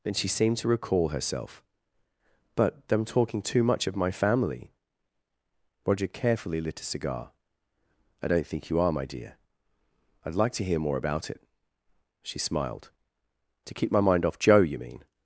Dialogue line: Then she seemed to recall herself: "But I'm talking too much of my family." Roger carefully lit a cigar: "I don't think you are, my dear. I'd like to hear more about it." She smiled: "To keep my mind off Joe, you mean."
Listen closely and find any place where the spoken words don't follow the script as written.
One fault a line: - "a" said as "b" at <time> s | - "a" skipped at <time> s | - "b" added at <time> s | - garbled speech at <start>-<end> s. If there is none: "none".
none